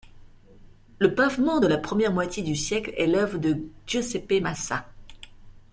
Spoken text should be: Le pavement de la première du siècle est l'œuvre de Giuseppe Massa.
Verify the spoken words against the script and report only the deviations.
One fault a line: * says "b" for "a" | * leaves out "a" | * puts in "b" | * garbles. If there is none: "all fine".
* puts in "moitié"